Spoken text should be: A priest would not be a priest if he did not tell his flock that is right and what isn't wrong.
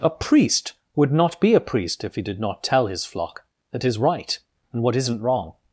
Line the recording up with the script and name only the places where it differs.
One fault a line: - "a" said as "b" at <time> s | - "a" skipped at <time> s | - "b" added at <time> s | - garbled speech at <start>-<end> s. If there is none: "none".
none